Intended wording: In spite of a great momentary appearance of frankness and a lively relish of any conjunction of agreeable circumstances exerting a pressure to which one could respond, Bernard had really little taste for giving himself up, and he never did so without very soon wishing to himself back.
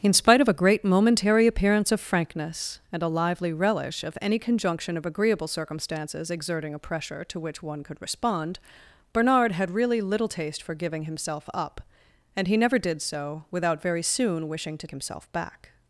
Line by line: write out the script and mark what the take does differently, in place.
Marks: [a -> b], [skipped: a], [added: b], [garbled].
In spite of a great momentary appearance of frankness and a lively relish of any conjunction of agreeable circumstances exerting a pressure to which one could respond, Bernard had really little taste for giving himself up, and he never did so without very soon wishing to himself back.